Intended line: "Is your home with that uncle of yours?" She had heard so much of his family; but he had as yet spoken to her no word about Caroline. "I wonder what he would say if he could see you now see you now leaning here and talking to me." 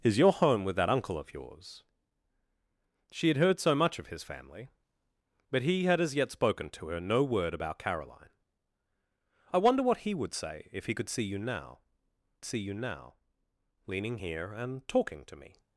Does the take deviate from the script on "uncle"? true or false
false